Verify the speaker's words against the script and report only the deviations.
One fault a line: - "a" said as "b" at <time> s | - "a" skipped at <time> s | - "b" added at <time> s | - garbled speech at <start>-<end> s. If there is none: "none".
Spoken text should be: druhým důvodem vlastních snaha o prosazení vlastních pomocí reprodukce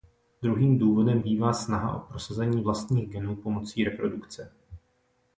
- "vlastních" said as "bývá" at 1.2 s
- "genů" added at 3.1 s